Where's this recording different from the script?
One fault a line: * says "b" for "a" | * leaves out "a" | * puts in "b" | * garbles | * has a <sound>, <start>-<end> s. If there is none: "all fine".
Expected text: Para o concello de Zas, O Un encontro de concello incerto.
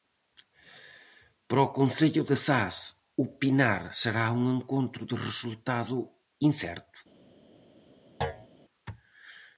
* puts in "Pinar será"
* says "resultado" for "concello"
* has a thud, 8.2-8.5 s